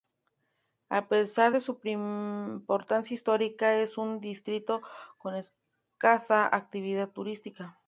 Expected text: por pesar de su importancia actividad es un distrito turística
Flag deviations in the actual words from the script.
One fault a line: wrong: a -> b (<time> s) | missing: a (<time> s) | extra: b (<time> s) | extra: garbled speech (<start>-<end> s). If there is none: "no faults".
wrong: por -> a (0.9 s)
wrong: actividad -> histórica (3.1 s)
extra: con escasa actividad (5.2 s)